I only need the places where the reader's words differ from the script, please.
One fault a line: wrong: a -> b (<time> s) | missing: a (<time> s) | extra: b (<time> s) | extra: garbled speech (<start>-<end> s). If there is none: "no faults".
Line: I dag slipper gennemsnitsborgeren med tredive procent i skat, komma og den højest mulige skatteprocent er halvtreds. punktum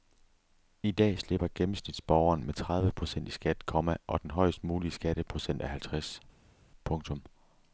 no faults